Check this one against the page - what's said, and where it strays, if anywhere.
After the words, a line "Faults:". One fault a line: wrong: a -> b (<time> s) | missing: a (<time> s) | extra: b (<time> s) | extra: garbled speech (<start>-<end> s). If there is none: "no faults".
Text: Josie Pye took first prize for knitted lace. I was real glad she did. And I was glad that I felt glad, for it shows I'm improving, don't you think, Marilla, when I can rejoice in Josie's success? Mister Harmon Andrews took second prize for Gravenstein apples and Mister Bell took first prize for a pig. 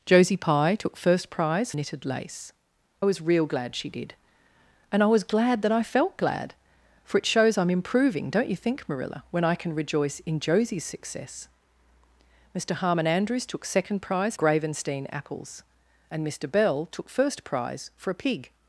Josie Pye took first prize knitted lace. was real glad she did. And I was glad that I felt glad, for it shows I'm improving, don't you think, Marilla, when I can rejoice in Josie's success? Mister Harmon Andrews took second prize Gravenstein apples and Mister Bell took first prize for a pig.
Faults:
missing: for (1.7 s)
missing: I (2.5 s)
missing: for (14.3 s)